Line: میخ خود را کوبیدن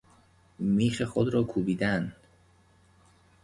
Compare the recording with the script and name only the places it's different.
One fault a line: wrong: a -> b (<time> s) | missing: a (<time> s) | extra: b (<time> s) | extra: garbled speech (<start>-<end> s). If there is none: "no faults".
no faults